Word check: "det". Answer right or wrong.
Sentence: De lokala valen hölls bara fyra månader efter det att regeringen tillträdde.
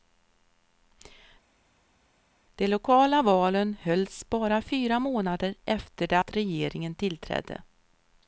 right